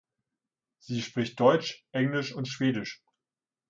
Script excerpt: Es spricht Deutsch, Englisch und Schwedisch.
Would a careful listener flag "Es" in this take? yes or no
yes